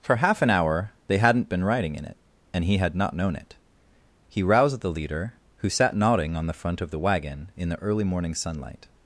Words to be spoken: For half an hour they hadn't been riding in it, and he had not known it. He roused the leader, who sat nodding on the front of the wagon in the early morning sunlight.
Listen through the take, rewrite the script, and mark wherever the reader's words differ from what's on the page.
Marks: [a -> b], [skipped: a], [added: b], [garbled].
For half an hour they hadn't been riding in it, and he had not known it. He roused the leader, who sat nodding on the front of the wagon in the early morning sunlight.